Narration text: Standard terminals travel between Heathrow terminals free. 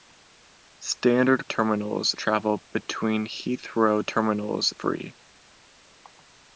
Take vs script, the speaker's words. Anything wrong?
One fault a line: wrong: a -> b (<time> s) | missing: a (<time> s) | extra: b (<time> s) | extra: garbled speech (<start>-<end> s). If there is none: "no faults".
no faults